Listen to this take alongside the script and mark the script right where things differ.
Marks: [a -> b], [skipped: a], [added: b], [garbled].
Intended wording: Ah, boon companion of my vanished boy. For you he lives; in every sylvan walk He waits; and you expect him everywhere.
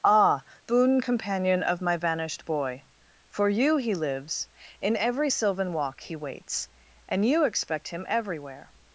Ah, boon companion of my vanished boy. For you he lives; in every sylvan walk He waits; and you expect him everywhere.